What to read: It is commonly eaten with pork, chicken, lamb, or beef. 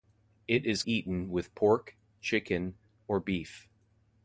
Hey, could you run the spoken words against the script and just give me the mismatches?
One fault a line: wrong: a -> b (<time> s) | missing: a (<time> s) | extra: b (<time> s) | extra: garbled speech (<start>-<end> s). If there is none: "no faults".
missing: commonly (0.8 s)
missing: lamb (2.8 s)